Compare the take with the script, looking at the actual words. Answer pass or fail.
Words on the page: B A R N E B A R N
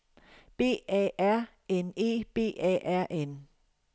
pass